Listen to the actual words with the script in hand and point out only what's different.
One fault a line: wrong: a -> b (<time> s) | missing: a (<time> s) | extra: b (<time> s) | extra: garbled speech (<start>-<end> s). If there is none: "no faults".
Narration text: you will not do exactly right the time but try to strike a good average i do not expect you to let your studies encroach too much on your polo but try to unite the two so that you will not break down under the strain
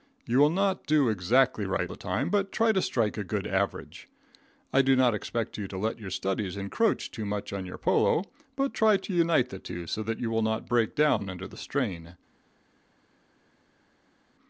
no faults